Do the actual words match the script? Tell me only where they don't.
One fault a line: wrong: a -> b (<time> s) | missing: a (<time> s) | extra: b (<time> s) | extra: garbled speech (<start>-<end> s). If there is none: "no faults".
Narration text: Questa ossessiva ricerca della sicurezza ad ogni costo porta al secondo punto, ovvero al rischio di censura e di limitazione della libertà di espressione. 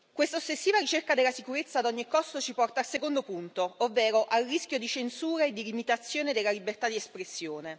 extra: ci (2.4 s)